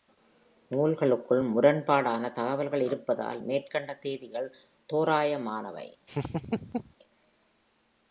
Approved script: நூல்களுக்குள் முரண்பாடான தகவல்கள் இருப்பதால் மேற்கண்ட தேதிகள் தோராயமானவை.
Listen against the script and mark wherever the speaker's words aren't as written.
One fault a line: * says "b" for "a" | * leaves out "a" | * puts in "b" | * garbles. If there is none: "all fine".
all fine